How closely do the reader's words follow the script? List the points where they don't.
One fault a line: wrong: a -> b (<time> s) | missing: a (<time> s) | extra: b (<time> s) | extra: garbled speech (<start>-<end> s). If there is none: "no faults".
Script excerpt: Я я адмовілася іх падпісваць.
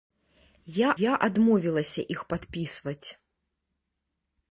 no faults